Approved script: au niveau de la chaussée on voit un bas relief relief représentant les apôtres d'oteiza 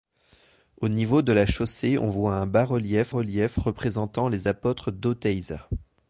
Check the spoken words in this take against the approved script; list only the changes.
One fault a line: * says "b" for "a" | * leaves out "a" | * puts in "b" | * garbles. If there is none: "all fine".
all fine